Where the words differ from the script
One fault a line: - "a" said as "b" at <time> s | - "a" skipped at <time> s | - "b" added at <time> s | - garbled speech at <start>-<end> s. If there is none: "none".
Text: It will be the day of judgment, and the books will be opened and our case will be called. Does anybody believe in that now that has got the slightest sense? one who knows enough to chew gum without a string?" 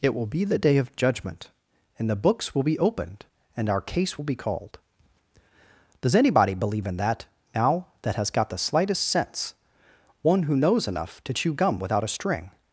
none